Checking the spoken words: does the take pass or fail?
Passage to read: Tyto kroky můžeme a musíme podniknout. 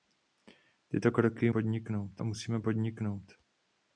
fail